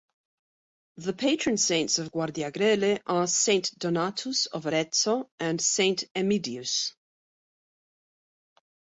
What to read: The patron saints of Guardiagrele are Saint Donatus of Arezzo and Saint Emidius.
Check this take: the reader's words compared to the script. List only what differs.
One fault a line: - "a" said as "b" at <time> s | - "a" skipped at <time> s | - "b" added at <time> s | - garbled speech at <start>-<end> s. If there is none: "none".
none